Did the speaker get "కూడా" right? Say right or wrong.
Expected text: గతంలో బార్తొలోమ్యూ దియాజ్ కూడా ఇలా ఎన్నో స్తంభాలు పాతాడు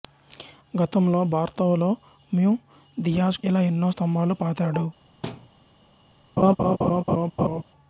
wrong